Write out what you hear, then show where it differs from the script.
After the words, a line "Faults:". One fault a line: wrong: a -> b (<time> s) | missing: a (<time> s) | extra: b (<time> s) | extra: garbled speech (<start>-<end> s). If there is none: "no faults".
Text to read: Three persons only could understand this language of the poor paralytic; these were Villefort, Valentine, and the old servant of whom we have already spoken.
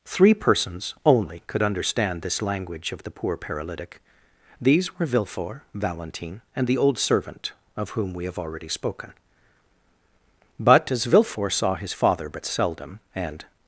Three persons only could understand this language of the poor paralytic; these were Villefort, Valentine, and the old servant of whom we have already spoken. But as Villefort saw his father but seldom, and
Faults:
extra: But as Villefort saw his father but seldom and (10.6 s)